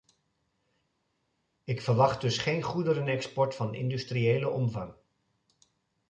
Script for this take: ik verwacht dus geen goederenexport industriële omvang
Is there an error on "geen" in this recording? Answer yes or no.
no